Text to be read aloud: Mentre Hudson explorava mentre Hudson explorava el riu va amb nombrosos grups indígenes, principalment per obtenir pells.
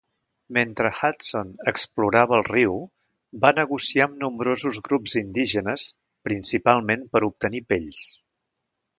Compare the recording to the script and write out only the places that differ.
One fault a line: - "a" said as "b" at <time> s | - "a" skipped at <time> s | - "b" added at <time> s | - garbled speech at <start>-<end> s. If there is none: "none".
- "mentre Hudson explorava" skipped at 2.4 s
- "negociar" added at 3.6 s